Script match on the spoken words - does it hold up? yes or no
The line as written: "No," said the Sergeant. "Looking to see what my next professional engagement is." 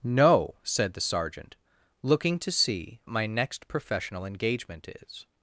no